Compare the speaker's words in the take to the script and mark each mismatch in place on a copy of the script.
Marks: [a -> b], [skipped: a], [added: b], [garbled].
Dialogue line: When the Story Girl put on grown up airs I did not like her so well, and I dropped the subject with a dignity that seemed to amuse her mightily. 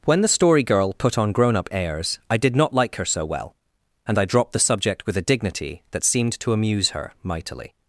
When the Story Girl put on grown up airs I did not like her so well, and I dropped the subject with a dignity that seemed to amuse her mightily.